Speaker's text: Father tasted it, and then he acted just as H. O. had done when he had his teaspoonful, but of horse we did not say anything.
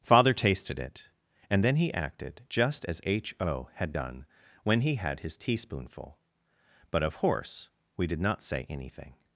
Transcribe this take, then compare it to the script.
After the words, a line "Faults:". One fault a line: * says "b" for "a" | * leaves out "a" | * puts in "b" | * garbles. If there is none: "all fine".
Father tasted it, and then he acted just as H. O. had done when he had his teaspoonful, but of horse we did not say anything.
Faults:
all fine